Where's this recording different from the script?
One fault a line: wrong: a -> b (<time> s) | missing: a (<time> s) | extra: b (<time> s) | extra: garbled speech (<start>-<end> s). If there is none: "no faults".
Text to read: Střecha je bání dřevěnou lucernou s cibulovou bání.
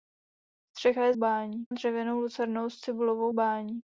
no faults